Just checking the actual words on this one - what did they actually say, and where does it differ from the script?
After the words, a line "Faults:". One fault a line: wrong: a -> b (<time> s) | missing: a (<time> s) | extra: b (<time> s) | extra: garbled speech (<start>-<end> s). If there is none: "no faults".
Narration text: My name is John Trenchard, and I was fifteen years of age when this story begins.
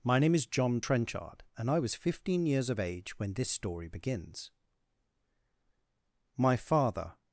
My name is John Trenchard, and I was fifteen years of age when this story begins. My father
Faults:
extra: My father (6.4 s)